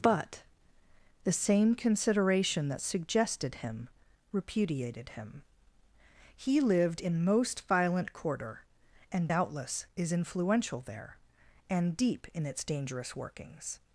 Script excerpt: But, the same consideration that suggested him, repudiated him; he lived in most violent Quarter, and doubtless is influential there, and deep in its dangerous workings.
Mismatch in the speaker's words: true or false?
false